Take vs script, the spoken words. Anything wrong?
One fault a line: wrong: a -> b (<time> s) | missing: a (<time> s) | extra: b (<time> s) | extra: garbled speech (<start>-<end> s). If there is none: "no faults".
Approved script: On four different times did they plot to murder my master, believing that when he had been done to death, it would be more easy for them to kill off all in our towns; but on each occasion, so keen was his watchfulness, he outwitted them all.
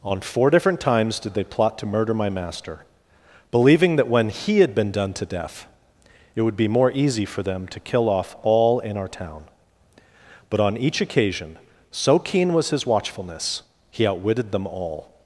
wrong: towns -> town (9.1 s)